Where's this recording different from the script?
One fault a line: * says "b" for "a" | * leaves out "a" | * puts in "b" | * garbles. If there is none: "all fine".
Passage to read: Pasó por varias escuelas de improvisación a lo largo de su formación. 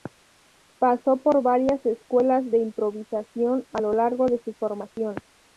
all fine